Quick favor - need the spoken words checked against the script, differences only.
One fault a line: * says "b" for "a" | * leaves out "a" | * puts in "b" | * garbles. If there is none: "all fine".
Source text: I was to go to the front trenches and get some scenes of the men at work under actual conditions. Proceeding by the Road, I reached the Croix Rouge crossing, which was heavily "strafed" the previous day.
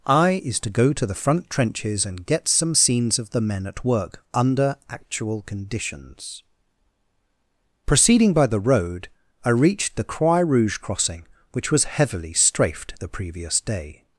* says "is" for "was"